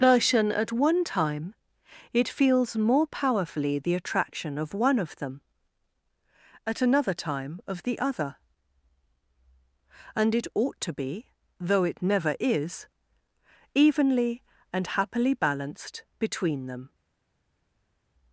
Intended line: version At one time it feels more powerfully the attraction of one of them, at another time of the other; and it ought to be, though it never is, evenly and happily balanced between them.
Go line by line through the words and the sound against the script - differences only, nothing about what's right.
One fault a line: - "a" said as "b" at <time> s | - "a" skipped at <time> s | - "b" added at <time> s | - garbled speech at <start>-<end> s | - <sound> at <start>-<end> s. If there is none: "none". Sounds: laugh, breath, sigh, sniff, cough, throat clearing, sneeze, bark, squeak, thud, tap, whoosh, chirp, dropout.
none